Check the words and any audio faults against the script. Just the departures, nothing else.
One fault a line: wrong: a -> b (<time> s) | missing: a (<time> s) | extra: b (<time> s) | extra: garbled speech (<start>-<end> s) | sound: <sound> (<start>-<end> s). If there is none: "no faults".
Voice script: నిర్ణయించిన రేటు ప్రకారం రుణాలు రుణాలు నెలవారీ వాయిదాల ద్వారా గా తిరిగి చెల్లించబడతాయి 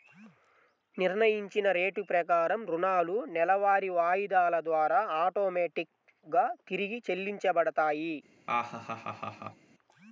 missing: రుణాలు (3.2 s)
extra: ఆటోమేటిక్ (5.2 s)
sound: laugh (8.5-9.7 s)